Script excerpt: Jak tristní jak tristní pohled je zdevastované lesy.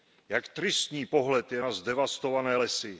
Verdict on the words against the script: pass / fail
fail